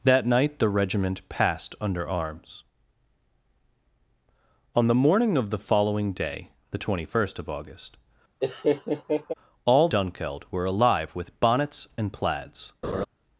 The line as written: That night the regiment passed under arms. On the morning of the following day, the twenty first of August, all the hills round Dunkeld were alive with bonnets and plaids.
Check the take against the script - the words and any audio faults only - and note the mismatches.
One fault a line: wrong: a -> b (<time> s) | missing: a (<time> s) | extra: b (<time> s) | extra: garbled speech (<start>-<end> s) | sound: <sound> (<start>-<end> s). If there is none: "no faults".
sound: laugh (8.4-9.3 s)
missing: the hills round (9.9 s)
sound: laugh (12.8-13.1 s)